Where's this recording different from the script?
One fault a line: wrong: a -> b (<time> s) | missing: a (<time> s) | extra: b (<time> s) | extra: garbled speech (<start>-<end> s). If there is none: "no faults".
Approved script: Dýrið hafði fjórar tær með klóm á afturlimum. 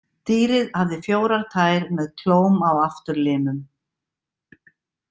no faults